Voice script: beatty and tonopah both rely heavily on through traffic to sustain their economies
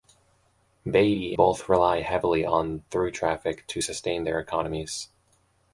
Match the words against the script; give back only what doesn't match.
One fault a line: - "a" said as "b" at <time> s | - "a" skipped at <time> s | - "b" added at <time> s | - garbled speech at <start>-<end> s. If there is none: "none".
- "and tonopah" skipped at 1.4 s